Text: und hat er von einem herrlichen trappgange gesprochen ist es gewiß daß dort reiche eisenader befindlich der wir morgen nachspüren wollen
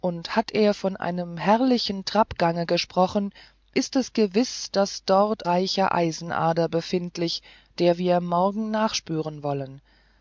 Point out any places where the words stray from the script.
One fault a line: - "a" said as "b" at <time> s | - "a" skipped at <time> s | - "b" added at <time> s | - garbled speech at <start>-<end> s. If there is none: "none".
none